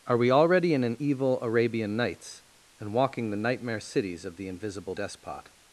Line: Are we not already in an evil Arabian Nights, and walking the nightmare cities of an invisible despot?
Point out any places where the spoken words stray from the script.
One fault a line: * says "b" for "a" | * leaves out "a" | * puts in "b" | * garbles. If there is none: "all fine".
* leaves out "not"
* says "the" for "an"